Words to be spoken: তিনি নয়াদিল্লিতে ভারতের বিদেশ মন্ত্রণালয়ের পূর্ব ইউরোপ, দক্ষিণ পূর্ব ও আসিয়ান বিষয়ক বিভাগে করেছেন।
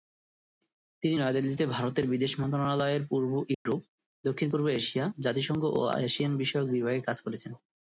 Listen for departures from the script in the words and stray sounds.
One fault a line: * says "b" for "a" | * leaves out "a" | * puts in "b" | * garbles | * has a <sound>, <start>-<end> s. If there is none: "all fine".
* has a dropout, 3.5-3.7 s
* puts in "এশিয়া জাতিসংঘ"
* puts in "কাজ"